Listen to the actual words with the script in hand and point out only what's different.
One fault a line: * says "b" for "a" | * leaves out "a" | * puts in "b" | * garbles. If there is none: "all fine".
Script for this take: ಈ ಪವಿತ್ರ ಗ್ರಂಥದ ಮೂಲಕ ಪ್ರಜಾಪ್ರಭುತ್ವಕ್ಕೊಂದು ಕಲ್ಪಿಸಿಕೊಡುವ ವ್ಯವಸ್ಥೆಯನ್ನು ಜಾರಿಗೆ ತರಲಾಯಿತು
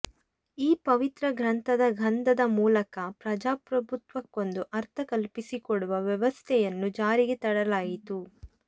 * puts in "ಗಂಧದ"
* puts in "ಅರ್ಥ"